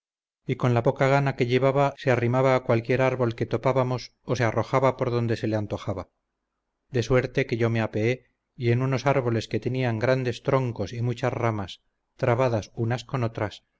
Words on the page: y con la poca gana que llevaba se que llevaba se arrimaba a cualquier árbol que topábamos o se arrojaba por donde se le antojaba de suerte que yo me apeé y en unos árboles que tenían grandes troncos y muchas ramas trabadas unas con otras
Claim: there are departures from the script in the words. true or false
true